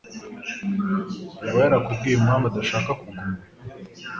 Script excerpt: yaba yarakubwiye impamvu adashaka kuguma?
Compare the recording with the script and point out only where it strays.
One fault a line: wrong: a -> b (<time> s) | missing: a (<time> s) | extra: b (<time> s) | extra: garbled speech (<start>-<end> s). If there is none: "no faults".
no faults